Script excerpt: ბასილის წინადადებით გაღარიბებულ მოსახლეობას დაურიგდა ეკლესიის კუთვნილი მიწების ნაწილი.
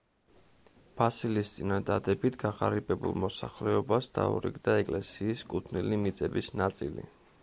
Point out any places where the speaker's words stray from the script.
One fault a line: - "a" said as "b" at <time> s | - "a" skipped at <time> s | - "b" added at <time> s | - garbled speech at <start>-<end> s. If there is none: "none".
none